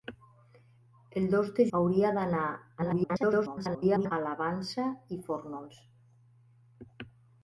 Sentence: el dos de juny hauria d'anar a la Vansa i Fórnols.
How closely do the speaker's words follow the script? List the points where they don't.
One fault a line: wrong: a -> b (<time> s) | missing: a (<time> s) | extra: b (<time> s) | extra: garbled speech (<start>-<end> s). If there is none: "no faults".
missing: juny (1.6 s)
extra: garbled speech (2.8-4.1 s)